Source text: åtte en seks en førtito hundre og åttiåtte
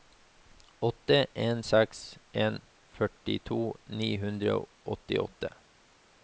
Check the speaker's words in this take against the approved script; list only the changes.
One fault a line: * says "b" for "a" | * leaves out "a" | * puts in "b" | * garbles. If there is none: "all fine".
* puts in "ni"